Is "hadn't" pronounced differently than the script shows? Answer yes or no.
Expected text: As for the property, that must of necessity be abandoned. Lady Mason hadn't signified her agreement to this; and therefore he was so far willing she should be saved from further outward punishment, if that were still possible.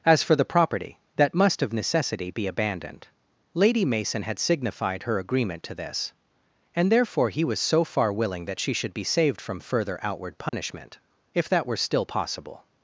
yes